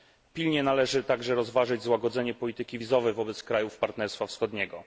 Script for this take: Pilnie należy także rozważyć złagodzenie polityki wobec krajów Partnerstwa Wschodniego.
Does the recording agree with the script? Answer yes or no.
no